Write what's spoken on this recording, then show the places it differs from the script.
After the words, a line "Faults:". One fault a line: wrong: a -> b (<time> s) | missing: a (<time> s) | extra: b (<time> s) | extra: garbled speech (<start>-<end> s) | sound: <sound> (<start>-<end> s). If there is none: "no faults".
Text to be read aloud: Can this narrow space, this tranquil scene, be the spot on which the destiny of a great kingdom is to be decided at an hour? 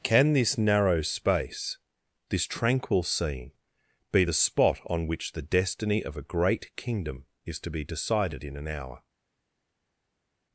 Can this narrow space, this tranquil scene, be the spot on which the destiny of a great kingdom is to be decided in an hour?
Faults:
wrong: at -> in (8.4 s)